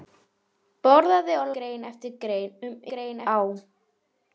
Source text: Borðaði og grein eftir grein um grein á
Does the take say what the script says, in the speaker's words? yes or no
yes